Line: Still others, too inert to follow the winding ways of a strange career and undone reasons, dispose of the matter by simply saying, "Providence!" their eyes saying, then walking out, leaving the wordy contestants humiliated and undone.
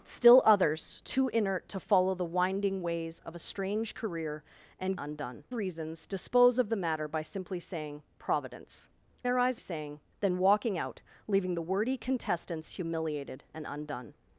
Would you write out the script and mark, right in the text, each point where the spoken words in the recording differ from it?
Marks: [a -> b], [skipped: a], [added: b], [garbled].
Still others, too inert to follow the winding ways of a strange career and undone reasons, dispose of the matter by simply saying, "Providence!" their eyes saying, then walking out, leaving the wordy contestants humiliated and undone.